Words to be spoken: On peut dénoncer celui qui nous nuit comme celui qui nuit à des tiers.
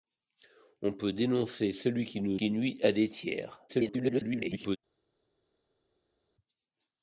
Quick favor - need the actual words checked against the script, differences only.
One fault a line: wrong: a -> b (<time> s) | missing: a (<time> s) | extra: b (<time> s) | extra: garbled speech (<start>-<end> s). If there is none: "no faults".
missing: nuit comme celui (2.4 s)
extra: garbled speech (3.7-4.8 s)